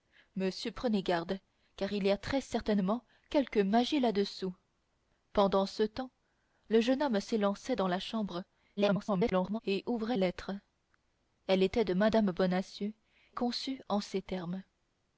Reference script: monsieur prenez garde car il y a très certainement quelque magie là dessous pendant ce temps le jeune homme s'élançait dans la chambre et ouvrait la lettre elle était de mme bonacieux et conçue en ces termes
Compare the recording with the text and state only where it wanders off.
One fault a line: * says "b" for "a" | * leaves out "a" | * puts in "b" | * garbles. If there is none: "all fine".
* garbles
* leaves out "la"
* leaves out "et"